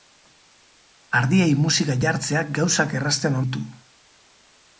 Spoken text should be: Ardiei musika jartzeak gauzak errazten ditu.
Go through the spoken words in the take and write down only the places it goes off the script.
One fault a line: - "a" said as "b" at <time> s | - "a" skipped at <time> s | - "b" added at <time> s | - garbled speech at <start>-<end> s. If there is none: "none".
none